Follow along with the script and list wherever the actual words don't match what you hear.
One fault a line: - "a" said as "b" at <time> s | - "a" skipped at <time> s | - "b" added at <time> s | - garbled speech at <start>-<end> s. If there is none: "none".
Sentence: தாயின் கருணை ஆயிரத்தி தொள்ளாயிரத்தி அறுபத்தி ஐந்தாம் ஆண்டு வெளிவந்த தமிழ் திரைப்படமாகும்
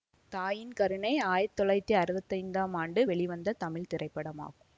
none